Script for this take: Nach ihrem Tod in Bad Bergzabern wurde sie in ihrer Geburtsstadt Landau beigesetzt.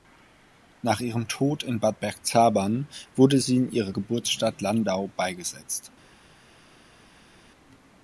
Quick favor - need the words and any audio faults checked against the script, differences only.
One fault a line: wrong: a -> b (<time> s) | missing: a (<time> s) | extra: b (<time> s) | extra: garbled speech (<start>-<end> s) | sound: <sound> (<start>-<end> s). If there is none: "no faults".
no faults